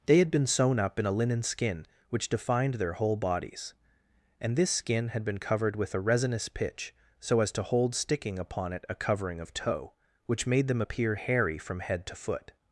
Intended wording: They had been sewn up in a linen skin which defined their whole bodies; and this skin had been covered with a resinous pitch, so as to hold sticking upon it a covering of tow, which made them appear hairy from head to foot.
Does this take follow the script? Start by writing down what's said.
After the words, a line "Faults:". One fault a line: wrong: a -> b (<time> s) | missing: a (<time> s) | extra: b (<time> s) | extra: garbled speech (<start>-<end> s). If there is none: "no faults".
They had been sewn up in a linen skin which defined their whole bodies; and this skin had been covered with a resinous pitch, so as to hold sticking upon it a covering of tow, which made them appear hairy from head to foot.
Faults:
no faults